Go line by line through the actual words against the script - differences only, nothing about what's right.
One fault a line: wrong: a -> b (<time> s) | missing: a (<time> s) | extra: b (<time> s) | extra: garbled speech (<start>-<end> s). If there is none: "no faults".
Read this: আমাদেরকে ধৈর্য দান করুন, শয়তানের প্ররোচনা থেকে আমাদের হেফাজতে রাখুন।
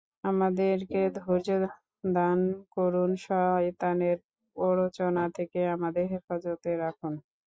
no faults